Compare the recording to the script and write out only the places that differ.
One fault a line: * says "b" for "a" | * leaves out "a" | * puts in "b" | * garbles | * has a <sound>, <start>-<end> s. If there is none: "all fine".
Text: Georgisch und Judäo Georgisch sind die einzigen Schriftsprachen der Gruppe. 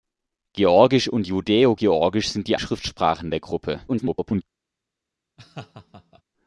* leaves out "einzigen"
* garbles
* has a laugh, 5.4-6.2 s